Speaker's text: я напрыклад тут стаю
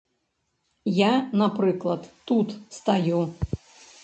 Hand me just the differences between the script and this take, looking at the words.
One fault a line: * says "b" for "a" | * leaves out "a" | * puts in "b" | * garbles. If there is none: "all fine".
all fine